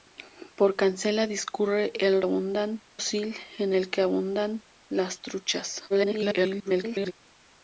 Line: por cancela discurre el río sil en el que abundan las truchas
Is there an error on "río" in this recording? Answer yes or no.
yes